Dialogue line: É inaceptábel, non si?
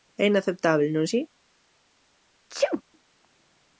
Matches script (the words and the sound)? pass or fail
fail